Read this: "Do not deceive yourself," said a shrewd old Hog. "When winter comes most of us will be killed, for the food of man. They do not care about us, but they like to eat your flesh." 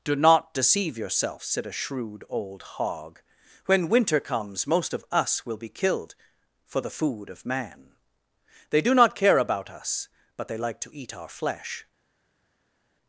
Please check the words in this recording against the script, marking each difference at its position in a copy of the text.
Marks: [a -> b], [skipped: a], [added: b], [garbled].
"Do not deceive yourself," said a shrewd old Hog. "When winter comes most of us will be killed, for the food of man. They do not care about us, but they like to eat [your -> our] flesh."